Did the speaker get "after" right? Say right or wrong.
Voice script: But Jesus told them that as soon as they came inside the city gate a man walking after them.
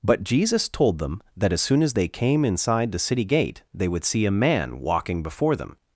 wrong